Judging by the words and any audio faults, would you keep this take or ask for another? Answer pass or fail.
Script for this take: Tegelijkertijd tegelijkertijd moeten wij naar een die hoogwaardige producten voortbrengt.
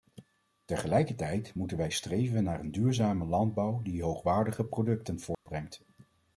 fail